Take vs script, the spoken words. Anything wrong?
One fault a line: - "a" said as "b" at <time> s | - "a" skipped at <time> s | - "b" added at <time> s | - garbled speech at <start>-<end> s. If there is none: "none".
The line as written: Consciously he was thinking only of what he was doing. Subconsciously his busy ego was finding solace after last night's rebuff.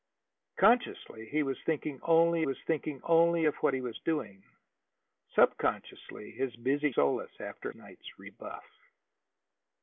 - "was thinking only" added at 2.4 s
- "ego was finding" skipped at 6.9 s
- "last" skipped at 7.7 s